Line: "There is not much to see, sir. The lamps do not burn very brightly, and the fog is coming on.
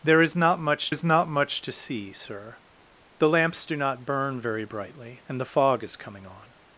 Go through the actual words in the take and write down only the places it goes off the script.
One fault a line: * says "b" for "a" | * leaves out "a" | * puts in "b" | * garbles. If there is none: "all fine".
* puts in "is not much"